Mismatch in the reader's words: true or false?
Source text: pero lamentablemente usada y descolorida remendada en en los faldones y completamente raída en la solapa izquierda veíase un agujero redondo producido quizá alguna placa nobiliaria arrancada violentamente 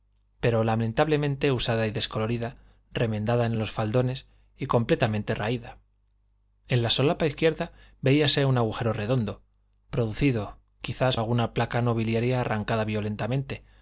false